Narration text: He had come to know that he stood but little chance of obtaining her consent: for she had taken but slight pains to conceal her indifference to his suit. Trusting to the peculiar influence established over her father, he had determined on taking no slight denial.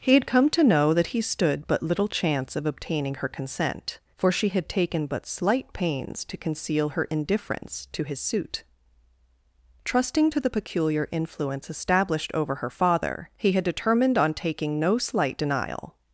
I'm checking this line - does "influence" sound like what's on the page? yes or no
yes